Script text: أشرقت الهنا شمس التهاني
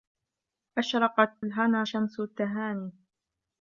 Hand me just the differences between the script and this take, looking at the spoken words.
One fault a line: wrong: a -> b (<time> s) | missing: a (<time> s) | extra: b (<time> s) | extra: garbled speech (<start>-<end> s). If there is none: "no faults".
no faults